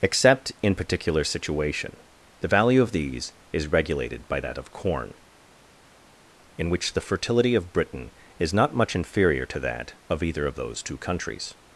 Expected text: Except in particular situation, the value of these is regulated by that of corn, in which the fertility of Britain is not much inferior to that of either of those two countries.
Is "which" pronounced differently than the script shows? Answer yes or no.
no